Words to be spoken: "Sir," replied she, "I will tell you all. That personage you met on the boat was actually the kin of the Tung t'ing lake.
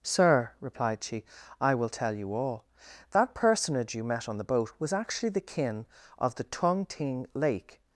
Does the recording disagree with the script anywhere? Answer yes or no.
no